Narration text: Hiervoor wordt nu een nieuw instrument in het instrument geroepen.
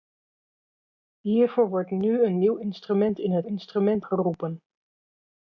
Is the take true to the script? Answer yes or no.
yes